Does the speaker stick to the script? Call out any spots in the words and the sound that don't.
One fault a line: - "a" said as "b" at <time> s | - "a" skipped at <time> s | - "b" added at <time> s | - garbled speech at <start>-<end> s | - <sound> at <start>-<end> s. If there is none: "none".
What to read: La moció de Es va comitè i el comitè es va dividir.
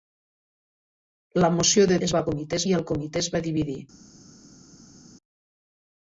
none